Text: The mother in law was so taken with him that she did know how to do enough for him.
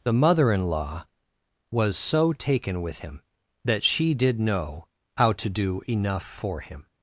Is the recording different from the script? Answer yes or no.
no